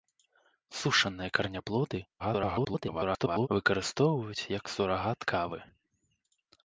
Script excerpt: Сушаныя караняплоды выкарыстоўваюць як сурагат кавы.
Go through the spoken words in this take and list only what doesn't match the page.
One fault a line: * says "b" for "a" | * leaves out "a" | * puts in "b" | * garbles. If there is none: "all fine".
* garbles